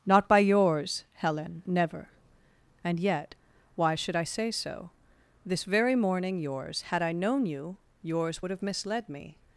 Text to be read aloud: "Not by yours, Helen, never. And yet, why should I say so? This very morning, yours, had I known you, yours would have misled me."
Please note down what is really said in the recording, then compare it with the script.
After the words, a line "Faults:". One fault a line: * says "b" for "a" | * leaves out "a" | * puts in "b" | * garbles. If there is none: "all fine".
"Not by yours, Helen, never. And yet, why should I say so? This very morning, yours, had I known you, yours would have misled me."
Faults:
all fine